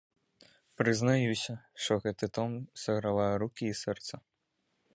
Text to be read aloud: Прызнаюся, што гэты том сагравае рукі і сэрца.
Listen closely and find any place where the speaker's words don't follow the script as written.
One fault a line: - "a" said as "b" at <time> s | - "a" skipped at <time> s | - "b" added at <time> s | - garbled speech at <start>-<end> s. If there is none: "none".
none